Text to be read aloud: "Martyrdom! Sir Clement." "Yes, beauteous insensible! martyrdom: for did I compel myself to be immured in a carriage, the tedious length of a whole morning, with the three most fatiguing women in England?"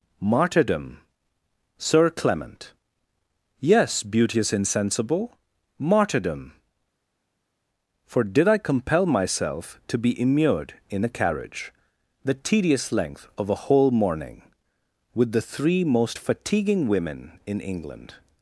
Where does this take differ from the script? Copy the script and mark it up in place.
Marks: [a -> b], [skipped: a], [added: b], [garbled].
"Martyrdom! Sir Clement." "Yes, beauteous insensible! martyrdom: for did I compel myself to be immured in a carriage, the tedious length of a whole morning, with the three most fatiguing women in England?"